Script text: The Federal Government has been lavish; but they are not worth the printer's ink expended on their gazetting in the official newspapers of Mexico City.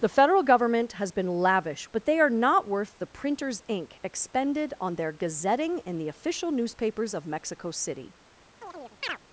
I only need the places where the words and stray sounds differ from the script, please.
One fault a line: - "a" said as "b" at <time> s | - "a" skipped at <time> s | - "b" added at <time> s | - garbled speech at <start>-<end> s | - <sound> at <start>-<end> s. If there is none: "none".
- chirp at 8.6-9.2 s